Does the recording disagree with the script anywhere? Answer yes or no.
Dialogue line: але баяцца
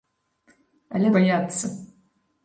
no